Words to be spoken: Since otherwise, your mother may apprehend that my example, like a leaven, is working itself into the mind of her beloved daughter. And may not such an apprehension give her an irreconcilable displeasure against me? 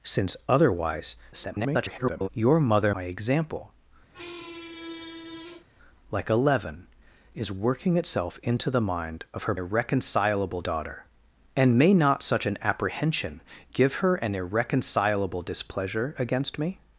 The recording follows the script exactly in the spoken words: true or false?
false